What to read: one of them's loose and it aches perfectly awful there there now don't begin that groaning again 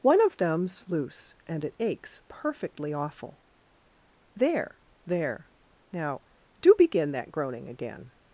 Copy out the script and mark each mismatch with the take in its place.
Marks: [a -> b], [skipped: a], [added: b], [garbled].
one of them's loose and it aches perfectly awful there there now [don't -> do] begin that groaning again